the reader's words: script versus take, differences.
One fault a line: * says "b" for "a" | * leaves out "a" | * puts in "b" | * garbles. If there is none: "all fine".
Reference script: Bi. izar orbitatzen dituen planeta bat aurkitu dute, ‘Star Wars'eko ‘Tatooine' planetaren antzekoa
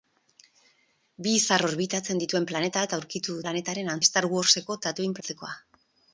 * says "planetaren" for "dute"
* leaves out "planetaren"